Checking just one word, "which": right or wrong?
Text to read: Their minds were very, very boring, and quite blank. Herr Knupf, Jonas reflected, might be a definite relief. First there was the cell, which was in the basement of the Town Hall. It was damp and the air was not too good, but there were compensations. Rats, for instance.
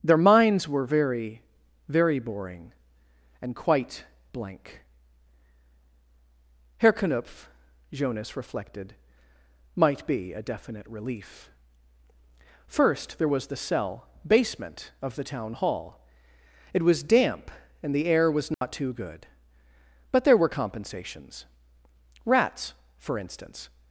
wrong